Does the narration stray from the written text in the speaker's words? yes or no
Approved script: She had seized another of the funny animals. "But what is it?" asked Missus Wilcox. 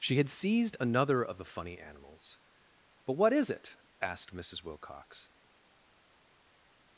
no